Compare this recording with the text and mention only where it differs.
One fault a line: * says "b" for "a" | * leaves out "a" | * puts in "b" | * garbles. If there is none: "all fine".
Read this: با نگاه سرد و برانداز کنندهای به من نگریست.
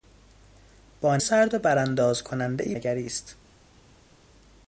* leaves out "نگاه"
* leaves out "به من"